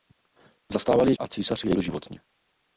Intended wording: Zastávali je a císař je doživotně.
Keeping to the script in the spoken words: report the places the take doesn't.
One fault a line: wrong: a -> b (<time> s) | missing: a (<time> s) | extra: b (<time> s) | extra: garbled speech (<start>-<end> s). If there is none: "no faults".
no faults